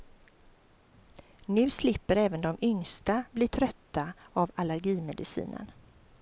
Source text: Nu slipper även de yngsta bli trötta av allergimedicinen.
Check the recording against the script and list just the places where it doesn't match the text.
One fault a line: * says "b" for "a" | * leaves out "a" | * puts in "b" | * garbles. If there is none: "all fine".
all fine